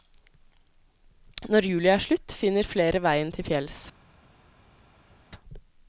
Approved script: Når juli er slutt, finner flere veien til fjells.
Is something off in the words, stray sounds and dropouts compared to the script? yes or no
no